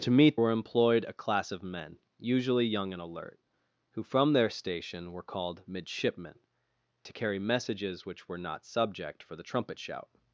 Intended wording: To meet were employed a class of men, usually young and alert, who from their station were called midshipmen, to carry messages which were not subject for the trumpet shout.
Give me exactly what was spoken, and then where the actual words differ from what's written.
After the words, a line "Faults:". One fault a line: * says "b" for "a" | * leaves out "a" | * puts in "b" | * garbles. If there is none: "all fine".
To meet were employed a class of men, usually young and alert, who from their station were called midshipmen, to carry messages which were not subject for the trumpet shout.
Faults:
all fine